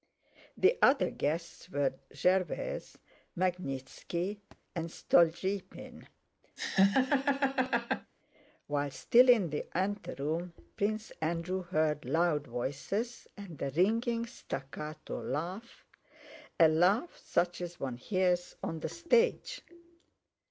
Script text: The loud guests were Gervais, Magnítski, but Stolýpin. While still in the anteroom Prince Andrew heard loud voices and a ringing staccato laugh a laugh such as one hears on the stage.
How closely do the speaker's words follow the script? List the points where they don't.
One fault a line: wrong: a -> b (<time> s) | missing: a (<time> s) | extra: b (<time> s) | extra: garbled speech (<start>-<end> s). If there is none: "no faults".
wrong: loud -> other (0.8 s)
wrong: but -> and (4.7 s)